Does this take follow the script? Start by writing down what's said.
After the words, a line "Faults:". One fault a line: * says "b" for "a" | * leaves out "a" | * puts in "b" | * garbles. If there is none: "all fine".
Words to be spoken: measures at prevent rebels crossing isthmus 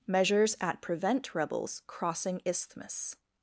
measures at prevent rebels crossing isthmus
Faults:
all fine